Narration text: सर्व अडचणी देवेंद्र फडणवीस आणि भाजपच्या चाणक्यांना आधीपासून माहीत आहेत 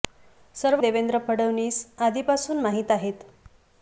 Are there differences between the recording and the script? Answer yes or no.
yes